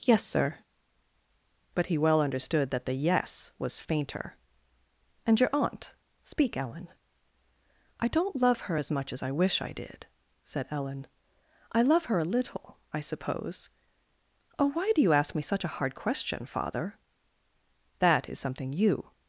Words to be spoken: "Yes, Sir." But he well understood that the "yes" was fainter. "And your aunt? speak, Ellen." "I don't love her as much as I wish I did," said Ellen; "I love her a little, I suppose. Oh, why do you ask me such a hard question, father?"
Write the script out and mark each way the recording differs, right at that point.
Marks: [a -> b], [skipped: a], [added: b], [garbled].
"Yes, Sir." But he well understood that the "yes" was fainter. "And your aunt? speak, Ellen." "I don't love her as much as I wish I did," said Ellen; "I love her a little, I suppose. Oh, why do you ask me such a hard question, father?" [added: That is something you]